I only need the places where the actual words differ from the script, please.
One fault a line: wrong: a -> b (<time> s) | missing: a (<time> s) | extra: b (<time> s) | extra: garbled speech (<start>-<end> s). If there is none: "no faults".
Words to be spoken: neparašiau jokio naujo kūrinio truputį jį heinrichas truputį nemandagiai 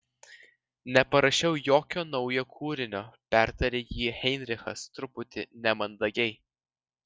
wrong: truputį -> pertarė (3.4 s)